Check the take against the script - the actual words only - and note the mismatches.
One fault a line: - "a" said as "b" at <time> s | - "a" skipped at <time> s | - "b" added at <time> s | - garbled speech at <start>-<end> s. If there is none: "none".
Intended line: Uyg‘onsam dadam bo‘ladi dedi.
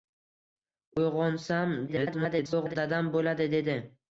- garbled speech at 1.9-2.8 s